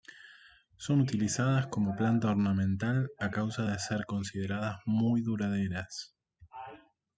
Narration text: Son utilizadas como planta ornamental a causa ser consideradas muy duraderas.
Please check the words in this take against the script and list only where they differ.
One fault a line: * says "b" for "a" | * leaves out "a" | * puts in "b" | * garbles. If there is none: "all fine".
* puts in "de"